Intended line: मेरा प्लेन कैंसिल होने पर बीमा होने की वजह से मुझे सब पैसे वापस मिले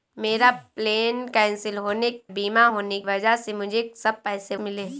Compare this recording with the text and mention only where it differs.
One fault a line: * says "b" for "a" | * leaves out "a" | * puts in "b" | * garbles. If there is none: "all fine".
* leaves out "पर"
* leaves out "की"
* leaves out "वापस"